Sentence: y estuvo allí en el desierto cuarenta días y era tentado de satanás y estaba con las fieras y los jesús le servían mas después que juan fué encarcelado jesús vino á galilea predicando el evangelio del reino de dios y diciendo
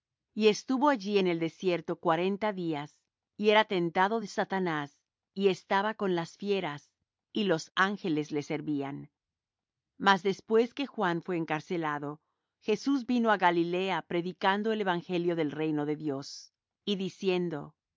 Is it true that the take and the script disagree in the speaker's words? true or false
true